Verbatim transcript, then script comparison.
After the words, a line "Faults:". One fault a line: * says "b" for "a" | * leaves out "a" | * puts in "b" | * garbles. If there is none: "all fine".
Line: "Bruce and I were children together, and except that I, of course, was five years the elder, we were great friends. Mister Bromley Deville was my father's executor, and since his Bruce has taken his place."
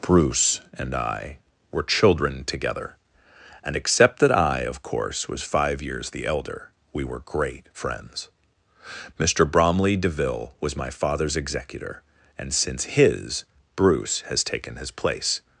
"Bruce and I were children together, and except that I, of course, was five years the elder, we were great friends. Mister Bromley Deville was my father's executor, and since his Bruce has taken his place."
Faults:
all fine